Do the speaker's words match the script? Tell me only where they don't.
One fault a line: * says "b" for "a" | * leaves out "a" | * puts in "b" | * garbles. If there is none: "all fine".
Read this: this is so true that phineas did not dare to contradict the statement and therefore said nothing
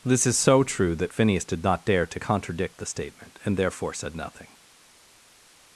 all fine